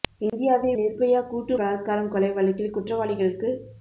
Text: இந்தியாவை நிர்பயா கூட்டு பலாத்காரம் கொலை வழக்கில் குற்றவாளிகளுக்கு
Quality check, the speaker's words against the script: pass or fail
pass